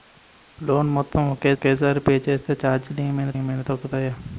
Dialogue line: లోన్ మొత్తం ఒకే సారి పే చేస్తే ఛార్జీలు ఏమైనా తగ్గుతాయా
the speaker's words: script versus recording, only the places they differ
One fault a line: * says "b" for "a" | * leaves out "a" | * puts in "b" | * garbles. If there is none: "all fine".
* puts in "ఒకే"
* puts in "ఏమైనా"